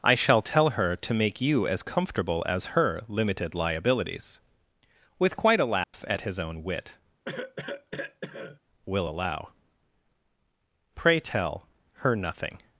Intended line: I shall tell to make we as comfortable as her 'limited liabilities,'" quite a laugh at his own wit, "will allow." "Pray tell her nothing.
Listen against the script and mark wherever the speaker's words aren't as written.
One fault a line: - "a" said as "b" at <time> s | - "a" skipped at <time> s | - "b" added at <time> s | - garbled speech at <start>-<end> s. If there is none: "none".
- "her" added at 0.7 s
- "we" said as "you" at 1.4 s
- "with" added at 5.2 s